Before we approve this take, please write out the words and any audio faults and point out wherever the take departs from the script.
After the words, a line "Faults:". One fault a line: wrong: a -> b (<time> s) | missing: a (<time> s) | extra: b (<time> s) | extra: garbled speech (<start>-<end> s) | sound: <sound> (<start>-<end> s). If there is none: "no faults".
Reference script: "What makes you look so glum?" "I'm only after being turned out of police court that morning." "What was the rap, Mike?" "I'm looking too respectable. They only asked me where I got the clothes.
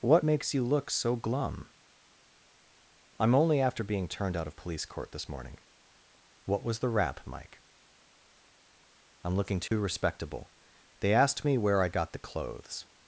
"What makes you look so glum?" "I'm only after being turned out of police court this morning." "What was the rap, Mike?" "I'm looking too respectable. They asked me where I got the clothes.
Faults:
wrong: that -> this (5.1 s)
sound: dropout (9.7-9.7 s)
missing: only (11.1 s)